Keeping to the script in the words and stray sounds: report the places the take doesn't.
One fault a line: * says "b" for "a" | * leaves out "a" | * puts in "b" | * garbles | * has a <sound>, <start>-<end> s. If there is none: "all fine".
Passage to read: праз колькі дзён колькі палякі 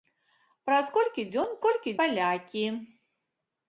all fine